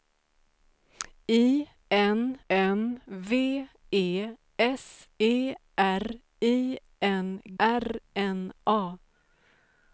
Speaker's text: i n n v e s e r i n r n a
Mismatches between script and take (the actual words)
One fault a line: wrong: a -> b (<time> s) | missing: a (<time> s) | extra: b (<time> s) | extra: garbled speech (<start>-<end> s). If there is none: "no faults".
no faults